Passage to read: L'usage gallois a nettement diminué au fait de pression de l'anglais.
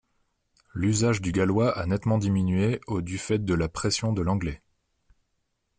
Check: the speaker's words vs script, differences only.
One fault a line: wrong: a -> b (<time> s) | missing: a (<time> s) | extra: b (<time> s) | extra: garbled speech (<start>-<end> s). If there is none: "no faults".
extra: du (1.2 s)
extra: du (3.0 s)
extra: la (3.5 s)